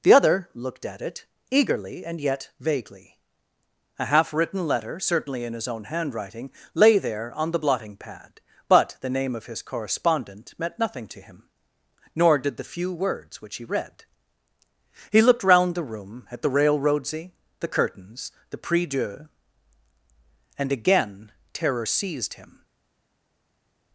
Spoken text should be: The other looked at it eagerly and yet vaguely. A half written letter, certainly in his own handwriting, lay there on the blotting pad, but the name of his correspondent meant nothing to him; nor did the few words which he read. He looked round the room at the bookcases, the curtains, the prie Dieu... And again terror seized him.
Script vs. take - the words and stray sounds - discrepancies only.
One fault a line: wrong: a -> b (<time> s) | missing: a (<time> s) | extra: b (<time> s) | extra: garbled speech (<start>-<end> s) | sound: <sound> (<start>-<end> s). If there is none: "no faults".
wrong: bookcases -> railroadsy (16.5 s)